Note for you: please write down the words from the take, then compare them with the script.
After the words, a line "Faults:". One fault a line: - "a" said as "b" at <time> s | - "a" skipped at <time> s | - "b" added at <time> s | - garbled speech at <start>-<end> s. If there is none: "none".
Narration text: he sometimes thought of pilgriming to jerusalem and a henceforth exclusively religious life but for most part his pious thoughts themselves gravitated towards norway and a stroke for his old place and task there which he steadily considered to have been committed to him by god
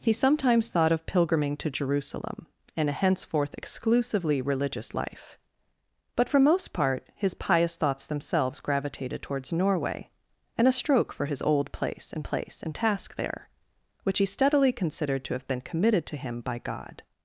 he sometimes thought of pilgriming to jerusalem and a henceforth exclusively religious life but for most part his pious thoughts themselves gravitated towards norway and a stroke for his old place and place and task there which he steadily considered to have been committed to him by god
Faults:
- "place and" added at 12.2 s